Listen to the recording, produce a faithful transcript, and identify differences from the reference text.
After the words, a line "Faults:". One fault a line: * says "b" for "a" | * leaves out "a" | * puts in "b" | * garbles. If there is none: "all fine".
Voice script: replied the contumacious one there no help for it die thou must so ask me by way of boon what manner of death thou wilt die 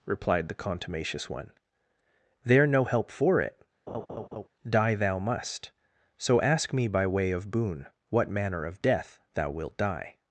replied the contumacious one there no help for it die thou must so ask me by way of boon what manner of death thou wilt die
Faults:
all fine